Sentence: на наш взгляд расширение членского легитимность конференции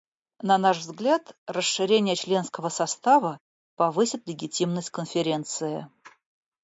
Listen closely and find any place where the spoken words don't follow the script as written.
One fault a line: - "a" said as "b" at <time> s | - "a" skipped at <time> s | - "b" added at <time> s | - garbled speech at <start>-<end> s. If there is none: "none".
- "состава повысит" added at 2.7 s